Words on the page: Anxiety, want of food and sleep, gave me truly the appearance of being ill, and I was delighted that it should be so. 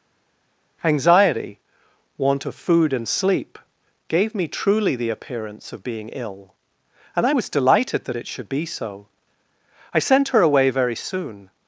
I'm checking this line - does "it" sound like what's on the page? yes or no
yes